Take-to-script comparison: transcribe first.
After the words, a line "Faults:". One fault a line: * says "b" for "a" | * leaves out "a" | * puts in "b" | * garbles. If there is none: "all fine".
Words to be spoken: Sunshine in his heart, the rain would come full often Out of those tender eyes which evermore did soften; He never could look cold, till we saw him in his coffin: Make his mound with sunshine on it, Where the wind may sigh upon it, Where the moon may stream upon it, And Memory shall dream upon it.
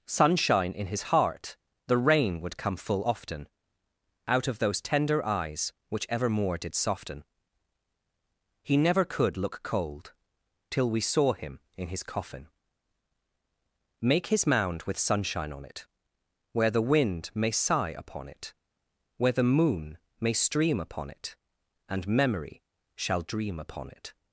Sunshine in his heart, the rain would come full often Out of those tender eyes which evermore did soften; He never could look cold, till we saw him in his coffin: Make his mound with sunshine on it, Where the wind may sigh upon it, Where the moon may stream upon it, And Memory shall dream upon it.
Faults:
all fine